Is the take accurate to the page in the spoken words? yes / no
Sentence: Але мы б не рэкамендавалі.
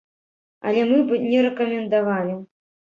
yes